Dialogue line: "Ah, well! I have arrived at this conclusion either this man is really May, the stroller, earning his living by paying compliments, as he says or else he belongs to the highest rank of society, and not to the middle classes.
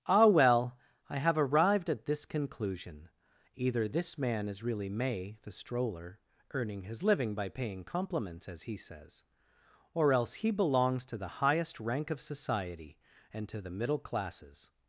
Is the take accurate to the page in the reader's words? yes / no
no